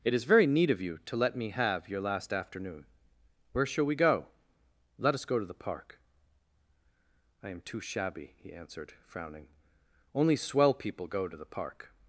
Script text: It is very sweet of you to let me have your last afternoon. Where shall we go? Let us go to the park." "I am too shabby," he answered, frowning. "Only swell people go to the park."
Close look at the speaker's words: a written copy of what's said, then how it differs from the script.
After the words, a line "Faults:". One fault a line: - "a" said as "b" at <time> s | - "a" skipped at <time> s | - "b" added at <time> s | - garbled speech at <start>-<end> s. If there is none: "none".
It is very neat of you to let me have your last afternoon. Where shall we go? Let us go to the park." "I am too shabby," he answered, frowning. "Only swell people go to the park."
Faults:
- "sweet" said as "neat" at 0.5 s